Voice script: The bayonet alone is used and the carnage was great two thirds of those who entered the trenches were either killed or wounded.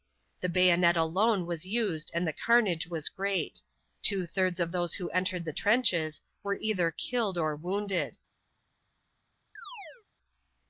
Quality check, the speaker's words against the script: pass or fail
fail